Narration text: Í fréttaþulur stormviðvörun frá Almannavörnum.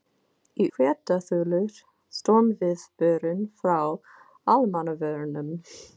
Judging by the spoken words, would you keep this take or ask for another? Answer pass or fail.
pass